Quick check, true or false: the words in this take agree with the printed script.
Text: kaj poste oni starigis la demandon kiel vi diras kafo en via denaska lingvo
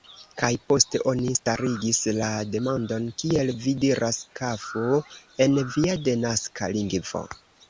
true